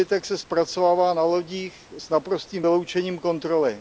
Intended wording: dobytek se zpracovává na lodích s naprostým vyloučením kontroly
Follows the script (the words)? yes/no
yes